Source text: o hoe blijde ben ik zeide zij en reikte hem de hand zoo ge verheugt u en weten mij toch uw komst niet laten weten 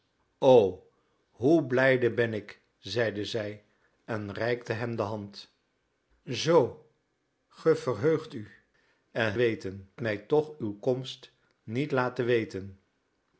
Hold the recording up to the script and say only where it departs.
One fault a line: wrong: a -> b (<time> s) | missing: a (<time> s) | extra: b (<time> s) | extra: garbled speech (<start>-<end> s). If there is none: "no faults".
no faults